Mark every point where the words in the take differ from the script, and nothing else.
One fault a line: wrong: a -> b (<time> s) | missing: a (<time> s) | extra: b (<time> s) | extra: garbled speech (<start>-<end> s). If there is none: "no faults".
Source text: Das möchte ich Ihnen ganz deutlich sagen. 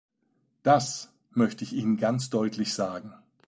no faults